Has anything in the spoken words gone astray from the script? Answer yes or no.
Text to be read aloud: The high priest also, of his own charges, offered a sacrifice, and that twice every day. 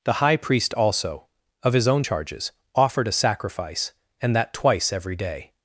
no